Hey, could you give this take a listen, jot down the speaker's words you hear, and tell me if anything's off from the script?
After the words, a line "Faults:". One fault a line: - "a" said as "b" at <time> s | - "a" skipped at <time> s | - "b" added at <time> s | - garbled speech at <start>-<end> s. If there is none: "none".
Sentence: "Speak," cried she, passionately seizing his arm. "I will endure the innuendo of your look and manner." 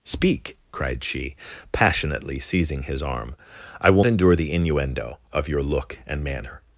"Speak," cried she, passionately seizing his arm. "I will endure the innuendo of your look and manner."
Faults:
none